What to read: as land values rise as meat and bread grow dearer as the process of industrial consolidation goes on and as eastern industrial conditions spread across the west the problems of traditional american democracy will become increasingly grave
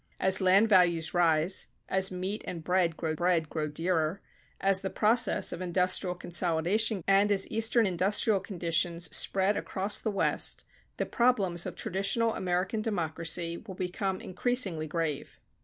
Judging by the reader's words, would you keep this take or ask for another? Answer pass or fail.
fail